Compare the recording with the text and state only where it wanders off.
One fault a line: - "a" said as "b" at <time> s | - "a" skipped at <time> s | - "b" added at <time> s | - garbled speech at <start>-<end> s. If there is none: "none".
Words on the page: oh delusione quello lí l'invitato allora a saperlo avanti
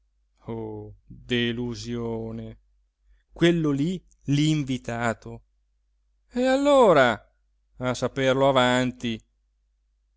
- "e" added at 6.3 s